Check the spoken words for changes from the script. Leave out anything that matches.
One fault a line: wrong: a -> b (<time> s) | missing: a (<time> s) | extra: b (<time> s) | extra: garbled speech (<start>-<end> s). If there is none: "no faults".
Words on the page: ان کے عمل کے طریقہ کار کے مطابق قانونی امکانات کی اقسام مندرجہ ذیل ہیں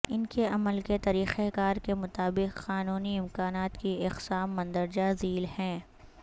no faults